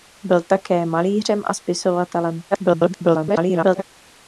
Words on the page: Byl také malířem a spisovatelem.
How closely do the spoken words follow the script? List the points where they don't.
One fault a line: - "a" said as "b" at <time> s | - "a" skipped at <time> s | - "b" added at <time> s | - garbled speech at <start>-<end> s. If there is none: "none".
- garbled speech at 2.5-3.8 s